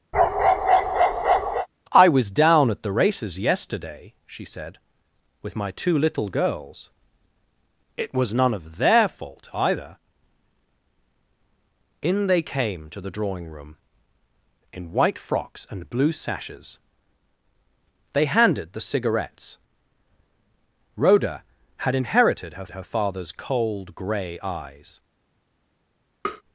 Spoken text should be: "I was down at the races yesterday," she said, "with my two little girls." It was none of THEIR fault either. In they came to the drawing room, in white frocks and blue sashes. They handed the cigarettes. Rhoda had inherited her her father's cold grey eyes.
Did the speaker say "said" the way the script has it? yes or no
yes